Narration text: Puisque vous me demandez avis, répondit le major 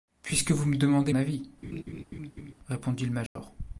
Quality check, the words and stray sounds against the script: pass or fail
fail